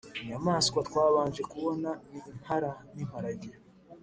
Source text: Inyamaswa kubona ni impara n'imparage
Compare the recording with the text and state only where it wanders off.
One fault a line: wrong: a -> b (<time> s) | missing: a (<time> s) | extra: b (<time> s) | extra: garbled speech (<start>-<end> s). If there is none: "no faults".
extra: twabanje (0.9 s)